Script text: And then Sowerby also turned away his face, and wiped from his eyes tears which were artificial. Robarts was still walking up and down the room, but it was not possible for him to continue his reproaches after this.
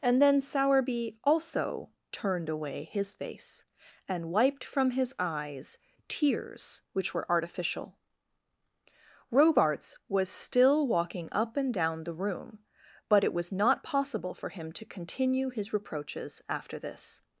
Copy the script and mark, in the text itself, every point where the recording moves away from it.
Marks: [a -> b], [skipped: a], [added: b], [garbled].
And then Sowerby also turned away his face, and wiped from his eyes tears which were artificial. Robarts was still walking up and down the room, but it was not possible for him to continue his reproaches after this.